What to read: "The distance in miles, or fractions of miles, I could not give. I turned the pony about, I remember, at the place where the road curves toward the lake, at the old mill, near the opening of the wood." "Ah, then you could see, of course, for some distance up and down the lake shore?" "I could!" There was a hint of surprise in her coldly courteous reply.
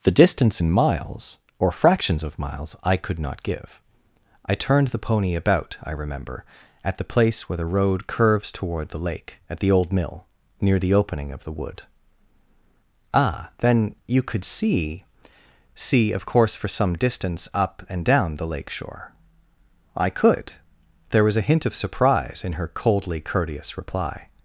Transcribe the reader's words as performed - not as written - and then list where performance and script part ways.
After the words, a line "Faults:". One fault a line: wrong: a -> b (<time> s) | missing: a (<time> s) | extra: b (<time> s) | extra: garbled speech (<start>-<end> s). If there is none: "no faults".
"The distance in miles, or fractions of miles, I could not give. I turned the pony about, I remember, at the place where the road curves toward the lake, at the old mill, near the opening of the wood." "Ah, then you could see see, of course, for some distance up and down the lake shore?" "I could!" There was a hint of surprise in her coldly courteous reply.
Faults:
extra: see (15.8 s)